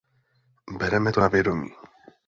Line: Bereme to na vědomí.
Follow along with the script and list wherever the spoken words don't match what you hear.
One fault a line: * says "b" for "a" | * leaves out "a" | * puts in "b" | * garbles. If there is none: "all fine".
all fine